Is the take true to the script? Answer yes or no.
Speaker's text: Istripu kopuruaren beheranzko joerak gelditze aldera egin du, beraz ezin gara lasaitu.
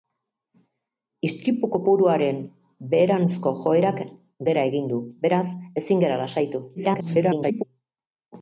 no